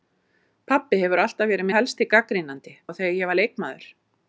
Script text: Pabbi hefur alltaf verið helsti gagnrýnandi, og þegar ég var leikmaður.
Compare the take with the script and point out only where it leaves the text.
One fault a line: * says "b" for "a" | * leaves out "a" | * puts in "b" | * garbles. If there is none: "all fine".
all fine